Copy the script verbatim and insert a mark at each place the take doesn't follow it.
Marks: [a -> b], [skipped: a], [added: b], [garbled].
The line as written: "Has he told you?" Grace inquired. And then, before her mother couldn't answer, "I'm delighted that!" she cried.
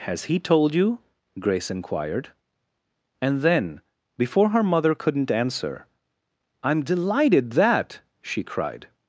"Has he told you?" Grace inquired. And then, before her mother couldn't answer, "I'm delighted that!" she cried.